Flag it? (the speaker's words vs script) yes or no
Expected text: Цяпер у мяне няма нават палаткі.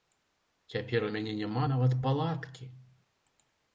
no